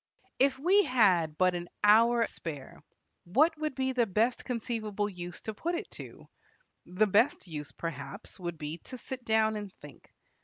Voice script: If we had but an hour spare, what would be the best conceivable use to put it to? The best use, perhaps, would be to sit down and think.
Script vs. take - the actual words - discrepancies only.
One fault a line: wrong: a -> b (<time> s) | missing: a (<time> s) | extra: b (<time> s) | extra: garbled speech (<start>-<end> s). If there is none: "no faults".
no faults